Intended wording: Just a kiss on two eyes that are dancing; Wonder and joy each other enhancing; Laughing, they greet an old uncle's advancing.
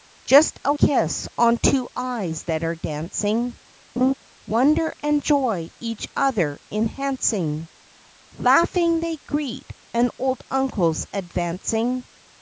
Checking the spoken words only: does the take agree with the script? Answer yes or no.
yes